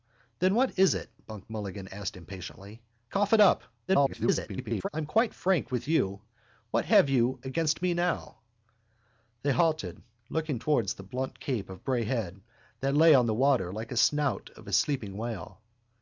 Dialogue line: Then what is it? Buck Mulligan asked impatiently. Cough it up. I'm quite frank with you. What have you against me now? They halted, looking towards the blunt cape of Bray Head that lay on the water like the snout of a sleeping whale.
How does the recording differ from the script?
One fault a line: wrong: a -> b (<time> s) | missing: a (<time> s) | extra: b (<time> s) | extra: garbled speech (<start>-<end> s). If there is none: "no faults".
extra: garbled speech (3.9-4.9 s)